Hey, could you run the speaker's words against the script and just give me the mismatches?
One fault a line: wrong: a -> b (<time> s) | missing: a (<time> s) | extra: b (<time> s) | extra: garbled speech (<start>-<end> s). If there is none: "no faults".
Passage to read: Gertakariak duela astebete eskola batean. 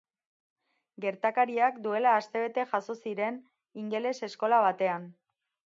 extra: jazo ziren ingeles (2.7 s)